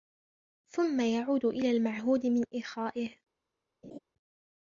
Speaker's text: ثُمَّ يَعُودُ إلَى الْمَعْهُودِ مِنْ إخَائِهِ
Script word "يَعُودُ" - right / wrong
right